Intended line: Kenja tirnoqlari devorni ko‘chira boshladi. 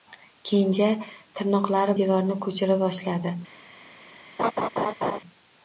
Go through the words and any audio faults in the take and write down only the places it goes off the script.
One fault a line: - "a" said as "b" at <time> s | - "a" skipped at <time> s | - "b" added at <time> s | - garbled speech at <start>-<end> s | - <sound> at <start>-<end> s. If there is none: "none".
- laugh at 4.4-5.2 s